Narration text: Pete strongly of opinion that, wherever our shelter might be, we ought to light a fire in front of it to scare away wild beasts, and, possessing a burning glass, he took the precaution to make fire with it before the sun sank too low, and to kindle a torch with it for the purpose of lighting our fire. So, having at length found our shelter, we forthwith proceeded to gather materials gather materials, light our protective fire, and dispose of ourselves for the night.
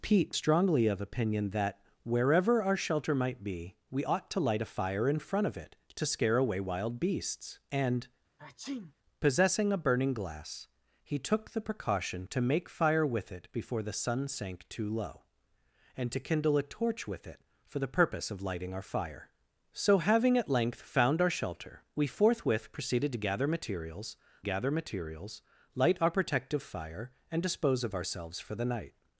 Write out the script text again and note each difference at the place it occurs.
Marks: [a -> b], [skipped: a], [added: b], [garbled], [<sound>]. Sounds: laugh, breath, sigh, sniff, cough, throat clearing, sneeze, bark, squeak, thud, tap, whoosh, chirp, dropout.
Pete strongly of opinion that, wherever our shelter might be, we ought to light a fire in front of it to scare away wild beasts, and, [sneeze] possessing a burning glass, he took the precaution to make fire with it before the sun sank too low, and to kindle a torch with it for the purpose of lighting our fire. So, having at length found our shelter, we forthwith proceeded to gather materials gather materials, light our protective fire, and dispose of ourselves for the night.